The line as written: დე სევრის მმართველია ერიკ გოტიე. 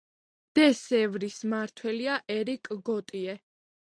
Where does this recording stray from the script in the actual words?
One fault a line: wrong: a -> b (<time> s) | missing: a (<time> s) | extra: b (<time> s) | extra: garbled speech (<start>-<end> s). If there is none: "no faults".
no faults